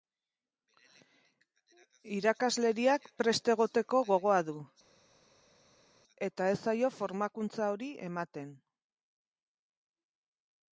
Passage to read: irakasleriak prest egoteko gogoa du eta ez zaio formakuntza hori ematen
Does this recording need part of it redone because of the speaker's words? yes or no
no